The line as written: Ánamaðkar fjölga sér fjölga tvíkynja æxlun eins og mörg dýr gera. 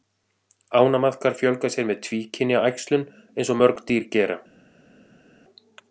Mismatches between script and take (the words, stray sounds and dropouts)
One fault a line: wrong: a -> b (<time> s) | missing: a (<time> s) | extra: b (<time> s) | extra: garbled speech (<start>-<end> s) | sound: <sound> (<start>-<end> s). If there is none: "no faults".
wrong: fjölga -> með (1.9 s)